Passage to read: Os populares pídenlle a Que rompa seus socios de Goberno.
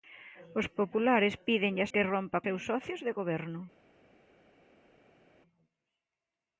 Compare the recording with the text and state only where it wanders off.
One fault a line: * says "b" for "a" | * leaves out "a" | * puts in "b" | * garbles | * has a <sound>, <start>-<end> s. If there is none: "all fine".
all fine